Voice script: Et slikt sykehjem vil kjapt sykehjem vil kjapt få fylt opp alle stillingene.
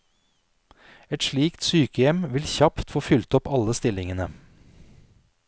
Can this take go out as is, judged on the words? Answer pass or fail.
fail